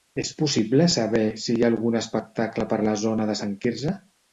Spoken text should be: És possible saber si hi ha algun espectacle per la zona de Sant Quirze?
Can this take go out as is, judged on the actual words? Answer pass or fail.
pass